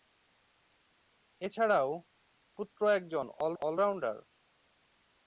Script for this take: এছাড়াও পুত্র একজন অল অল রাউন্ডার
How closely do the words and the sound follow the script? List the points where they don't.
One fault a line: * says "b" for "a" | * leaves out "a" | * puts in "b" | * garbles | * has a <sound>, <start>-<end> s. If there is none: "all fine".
all fine